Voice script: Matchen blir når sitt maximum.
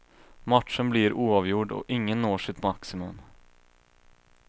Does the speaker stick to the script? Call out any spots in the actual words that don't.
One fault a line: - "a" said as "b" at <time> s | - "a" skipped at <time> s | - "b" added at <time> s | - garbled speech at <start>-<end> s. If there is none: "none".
- "oavgjord och ingen" added at 1.1 s